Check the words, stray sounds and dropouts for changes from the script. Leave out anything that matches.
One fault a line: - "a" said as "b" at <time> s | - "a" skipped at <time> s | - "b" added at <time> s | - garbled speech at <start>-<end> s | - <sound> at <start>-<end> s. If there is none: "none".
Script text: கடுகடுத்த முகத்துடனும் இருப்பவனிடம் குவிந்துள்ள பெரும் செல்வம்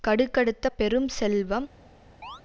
- "முகத்துடனும் இருப்பவனிடம் குவிந்துள்ள" skipped at 0.7 s
- chirp at 2.2-2.4 s